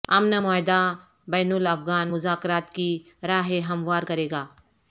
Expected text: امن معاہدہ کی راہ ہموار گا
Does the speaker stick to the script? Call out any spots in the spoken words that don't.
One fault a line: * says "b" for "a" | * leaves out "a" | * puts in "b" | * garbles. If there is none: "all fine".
* puts in "بین الافغان مذاکرات"
* puts in "کرے"